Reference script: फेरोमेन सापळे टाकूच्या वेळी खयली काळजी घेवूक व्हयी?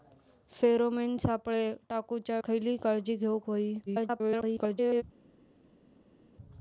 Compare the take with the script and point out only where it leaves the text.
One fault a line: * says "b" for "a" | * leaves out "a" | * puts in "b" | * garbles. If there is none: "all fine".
* leaves out "वेळी"
* garbles